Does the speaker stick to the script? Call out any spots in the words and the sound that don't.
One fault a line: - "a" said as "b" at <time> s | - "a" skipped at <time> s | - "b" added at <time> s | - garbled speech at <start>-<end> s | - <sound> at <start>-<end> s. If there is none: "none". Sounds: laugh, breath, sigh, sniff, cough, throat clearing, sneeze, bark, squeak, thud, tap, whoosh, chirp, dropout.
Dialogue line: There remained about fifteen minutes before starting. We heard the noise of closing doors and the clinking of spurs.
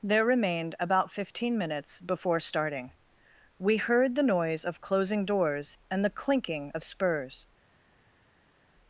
none